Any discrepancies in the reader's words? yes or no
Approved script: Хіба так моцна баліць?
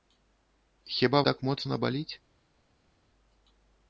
no